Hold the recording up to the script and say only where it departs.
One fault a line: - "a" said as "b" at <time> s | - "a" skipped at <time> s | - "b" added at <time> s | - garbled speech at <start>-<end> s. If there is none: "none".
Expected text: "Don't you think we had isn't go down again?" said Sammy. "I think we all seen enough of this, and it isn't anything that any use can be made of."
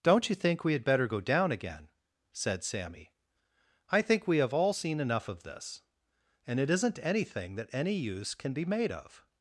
- "isn't" said as "better" at 0.8 s
- "have" added at 4.4 s